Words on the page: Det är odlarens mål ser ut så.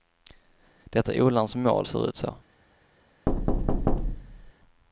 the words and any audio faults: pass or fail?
fail